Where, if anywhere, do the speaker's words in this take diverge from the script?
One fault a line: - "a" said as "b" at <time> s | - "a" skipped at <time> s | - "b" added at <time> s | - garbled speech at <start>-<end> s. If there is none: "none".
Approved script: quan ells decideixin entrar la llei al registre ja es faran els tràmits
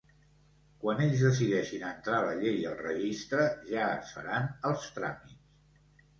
none